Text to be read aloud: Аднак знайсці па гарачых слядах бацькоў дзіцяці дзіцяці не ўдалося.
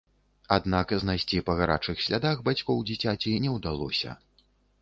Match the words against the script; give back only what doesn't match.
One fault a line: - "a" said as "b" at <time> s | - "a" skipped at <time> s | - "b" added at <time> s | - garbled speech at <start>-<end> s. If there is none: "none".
- "дзіцяці" skipped at 3.4 s